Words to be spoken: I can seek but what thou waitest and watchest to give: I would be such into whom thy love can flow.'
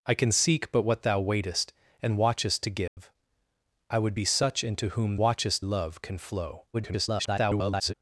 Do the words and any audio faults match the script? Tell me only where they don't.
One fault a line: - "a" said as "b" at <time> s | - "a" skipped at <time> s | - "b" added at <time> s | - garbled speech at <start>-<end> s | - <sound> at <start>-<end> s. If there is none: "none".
- dropout at 2.9-3.0 s
- "thy" said as "watchest" at 5.2 s
- garbled speech at 6.7-7.9 s